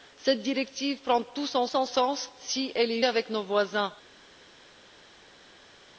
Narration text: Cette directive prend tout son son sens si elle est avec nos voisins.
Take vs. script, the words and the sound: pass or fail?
pass